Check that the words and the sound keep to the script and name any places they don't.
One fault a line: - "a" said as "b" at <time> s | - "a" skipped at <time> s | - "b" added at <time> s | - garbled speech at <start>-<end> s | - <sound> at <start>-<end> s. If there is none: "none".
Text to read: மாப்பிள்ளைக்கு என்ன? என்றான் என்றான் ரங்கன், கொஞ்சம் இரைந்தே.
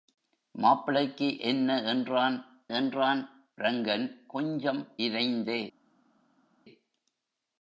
none